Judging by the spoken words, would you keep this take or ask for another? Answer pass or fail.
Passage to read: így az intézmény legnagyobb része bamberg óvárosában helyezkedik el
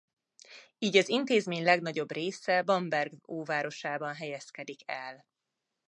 pass